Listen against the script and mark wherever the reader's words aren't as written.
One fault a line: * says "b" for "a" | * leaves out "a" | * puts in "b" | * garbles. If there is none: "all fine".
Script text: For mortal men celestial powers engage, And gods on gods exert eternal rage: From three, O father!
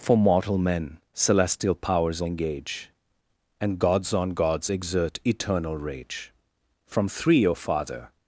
all fine